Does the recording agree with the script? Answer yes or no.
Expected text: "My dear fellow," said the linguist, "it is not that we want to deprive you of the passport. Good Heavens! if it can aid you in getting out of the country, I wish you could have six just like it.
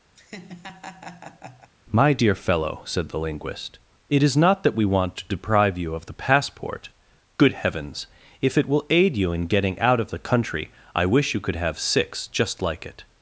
no